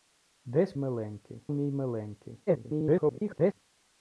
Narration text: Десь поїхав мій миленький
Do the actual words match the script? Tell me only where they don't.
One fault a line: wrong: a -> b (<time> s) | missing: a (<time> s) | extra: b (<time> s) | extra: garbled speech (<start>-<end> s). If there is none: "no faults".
wrong: поїхав -> миленький (0.7 s)
extra: garbled speech (2.5-3.6 s)